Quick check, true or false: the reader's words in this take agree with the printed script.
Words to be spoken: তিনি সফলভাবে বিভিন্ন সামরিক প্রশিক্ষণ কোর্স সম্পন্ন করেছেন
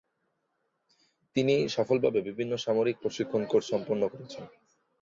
true